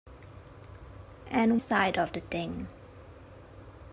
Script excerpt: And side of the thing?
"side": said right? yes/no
yes